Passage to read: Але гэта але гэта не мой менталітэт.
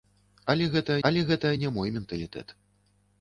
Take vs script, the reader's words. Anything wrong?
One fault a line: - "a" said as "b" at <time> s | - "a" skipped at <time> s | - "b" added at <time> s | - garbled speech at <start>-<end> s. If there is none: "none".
none